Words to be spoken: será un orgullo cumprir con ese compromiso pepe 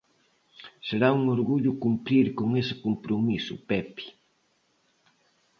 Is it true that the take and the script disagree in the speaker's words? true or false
false